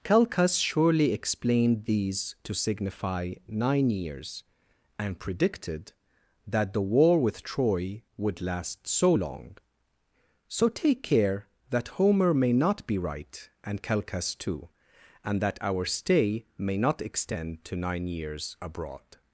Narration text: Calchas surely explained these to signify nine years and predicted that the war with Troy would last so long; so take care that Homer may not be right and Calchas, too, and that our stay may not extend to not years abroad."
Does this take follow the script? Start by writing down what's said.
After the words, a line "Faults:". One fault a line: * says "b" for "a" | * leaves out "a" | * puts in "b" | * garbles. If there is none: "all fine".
Calchas surely explained these to signify nine years and predicted that the war with Troy would last so long; so take care that Homer may not be right and Calchas, too, and that our stay may not extend to nine years abroad."
Faults:
* says "nine" for "not"